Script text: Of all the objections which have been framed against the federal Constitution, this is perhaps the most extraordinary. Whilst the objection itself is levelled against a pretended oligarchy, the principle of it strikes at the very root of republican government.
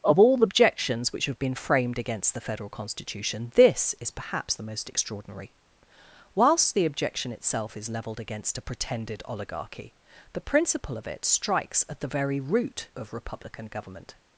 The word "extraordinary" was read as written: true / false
true